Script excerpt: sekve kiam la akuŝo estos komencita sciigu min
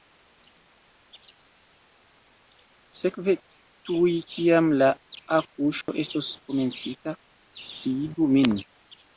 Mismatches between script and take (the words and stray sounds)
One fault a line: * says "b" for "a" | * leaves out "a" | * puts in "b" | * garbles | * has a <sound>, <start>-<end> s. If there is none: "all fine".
* puts in "tuj"
* has a dropout, 5.8-5.9 s